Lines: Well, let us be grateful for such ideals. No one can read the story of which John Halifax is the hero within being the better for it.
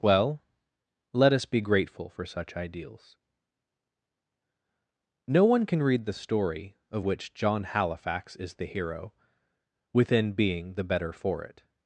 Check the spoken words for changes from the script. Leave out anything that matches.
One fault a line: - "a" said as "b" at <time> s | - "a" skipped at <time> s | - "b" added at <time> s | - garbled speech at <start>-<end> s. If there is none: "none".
none